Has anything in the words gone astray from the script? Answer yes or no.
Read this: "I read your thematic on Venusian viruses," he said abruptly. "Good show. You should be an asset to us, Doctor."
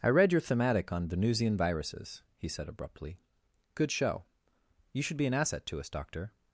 no